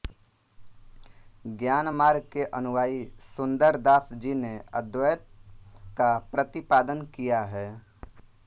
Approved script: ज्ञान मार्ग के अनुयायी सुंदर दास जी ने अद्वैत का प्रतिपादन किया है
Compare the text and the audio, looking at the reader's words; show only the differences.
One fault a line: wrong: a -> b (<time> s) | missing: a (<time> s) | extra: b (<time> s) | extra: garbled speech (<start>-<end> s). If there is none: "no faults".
no faults